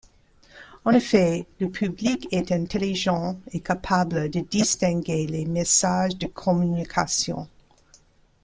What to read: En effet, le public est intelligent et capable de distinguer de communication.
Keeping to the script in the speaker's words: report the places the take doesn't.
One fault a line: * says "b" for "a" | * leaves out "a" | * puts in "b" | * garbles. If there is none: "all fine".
* puts in "les messages"